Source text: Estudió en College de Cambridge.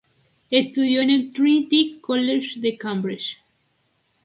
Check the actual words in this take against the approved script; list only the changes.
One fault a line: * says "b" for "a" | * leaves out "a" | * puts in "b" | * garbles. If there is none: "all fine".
* puts in "el Trinity"